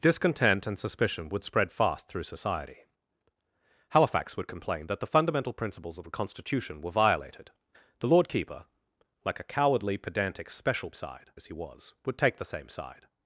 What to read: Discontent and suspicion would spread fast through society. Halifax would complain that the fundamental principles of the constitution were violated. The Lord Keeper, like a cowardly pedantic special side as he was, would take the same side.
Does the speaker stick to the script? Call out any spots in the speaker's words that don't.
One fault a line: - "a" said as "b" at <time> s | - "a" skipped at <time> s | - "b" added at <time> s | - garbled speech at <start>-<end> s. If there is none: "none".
none